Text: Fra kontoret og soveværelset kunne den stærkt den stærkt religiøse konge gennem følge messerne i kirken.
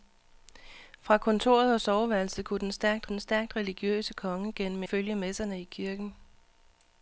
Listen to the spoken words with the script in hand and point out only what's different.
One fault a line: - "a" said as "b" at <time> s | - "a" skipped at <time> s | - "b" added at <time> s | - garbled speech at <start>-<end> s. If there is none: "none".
none